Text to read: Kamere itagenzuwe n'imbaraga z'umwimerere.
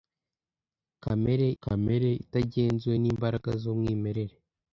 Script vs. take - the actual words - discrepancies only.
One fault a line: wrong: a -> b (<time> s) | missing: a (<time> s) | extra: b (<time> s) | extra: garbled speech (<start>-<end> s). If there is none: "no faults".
extra: kamere (1.6 s)